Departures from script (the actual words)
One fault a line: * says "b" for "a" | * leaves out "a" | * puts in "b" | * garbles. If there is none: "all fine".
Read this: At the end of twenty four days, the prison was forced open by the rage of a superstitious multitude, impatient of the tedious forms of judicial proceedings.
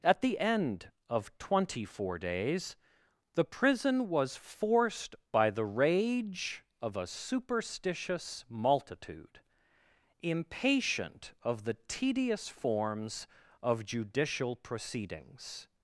* leaves out "open"